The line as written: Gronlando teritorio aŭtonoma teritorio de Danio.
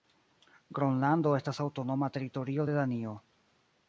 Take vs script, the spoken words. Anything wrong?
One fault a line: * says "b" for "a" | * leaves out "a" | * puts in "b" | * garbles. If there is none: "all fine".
* says "estas" for "teritorio"